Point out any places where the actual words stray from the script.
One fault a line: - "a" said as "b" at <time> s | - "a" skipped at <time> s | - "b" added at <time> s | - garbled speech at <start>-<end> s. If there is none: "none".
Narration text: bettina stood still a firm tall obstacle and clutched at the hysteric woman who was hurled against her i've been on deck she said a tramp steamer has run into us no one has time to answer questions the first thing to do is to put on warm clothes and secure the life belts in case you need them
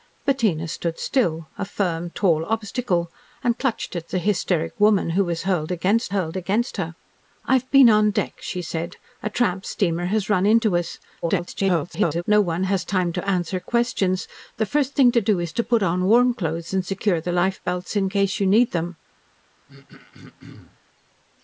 - "hurled against" added at 6.1 s
- garbled speech at 11.2-12.2 s